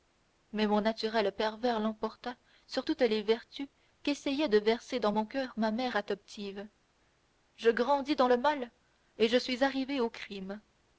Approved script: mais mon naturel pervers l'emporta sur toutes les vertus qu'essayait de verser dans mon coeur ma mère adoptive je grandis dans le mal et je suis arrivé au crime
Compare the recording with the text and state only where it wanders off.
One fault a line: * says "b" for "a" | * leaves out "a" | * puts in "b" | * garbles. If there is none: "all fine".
all fine